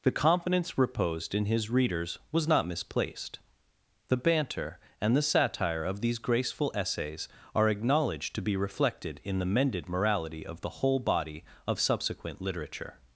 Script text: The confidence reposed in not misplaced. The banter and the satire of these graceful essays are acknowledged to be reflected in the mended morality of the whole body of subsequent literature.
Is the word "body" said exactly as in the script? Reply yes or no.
yes